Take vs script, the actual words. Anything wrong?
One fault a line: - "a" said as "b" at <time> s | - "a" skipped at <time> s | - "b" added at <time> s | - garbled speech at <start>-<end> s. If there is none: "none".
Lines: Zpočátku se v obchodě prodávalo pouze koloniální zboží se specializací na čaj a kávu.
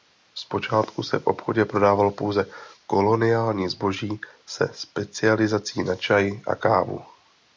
none